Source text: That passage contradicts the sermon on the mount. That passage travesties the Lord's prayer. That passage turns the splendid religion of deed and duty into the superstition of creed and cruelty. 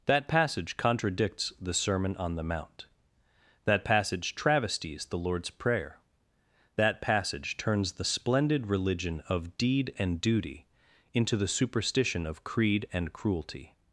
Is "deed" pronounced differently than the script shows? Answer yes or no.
no